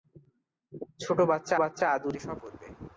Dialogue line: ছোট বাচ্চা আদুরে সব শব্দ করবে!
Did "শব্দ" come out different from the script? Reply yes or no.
yes